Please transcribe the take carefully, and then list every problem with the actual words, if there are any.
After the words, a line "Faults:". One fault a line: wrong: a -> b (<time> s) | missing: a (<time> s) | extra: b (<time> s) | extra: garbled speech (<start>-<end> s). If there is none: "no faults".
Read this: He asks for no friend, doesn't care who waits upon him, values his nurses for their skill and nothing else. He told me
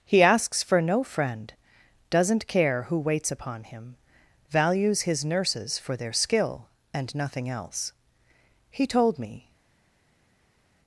He asks for no friend, doesn't care who waits upon him, values his nurses for their skill and nothing else. He told me
Faults:
no faults